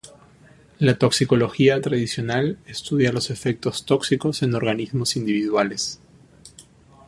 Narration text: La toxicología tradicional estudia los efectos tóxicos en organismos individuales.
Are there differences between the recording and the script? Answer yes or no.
no